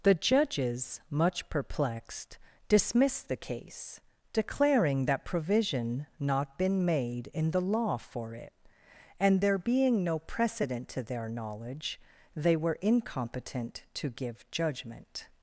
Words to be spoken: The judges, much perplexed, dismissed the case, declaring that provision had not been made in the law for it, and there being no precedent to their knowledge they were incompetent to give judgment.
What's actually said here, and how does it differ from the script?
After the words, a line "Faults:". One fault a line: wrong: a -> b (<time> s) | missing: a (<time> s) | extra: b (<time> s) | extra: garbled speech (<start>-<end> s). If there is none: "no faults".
The judges, much perplexed, dismissed the case, declaring that provision not been made in the law for it, and there being no precedent to their knowledge they were incompetent to give judgment.
Faults:
missing: had (6.1 s)